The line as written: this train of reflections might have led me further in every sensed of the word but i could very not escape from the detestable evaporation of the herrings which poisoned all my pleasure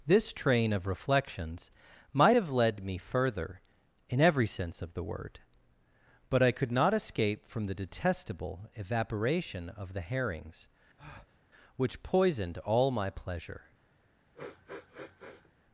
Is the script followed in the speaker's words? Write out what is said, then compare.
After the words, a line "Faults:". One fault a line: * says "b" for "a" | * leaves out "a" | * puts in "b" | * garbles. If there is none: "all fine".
this train of reflections might have led me further in every sense of the word but i could not escape from the detestable evaporation of the herrings which poisoned all my pleasure
Faults:
* says "sense" for "sensed"
* leaves out "very"